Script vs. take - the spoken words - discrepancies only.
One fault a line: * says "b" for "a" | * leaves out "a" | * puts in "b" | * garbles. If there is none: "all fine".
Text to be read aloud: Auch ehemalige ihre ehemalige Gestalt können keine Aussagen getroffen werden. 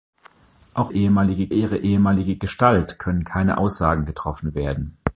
all fine